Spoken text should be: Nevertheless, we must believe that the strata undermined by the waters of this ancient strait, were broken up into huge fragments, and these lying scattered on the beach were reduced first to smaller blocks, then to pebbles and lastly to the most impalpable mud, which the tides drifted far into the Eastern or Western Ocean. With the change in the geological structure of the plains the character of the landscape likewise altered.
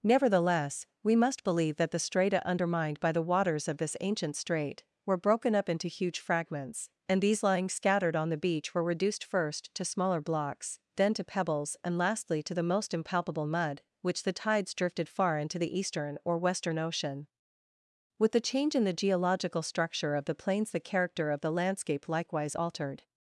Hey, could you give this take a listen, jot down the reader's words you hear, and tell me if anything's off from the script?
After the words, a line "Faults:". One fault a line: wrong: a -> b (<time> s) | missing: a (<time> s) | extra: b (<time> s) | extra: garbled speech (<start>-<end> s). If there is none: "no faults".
Nevertheless, we must believe that the strata undermined by the waters of this ancient strait, were broken up into huge fragments, and these lying scattered on the beach were reduced first to smaller blocks, then to pebbles and lastly to the most impalpable mud, which the tides drifted far into the Eastern or Western Ocean. With the change in the geological structure of the plains the character of the landscape likewise altered.
Faults:
no faults